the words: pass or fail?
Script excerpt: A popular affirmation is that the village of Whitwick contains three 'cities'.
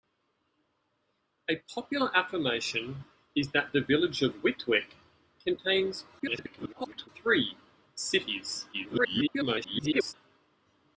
fail